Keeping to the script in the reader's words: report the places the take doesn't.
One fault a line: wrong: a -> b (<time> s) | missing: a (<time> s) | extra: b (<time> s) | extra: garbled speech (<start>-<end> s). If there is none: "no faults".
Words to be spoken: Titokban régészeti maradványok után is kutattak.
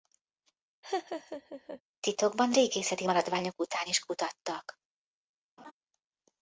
no faults